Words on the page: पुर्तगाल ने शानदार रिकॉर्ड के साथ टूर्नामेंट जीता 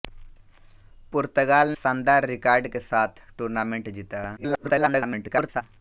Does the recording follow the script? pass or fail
fail